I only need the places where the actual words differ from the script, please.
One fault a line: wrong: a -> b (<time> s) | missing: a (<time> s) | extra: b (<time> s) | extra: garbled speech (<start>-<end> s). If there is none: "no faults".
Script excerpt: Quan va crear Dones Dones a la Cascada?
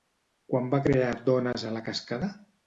missing: Dones (1.7 s)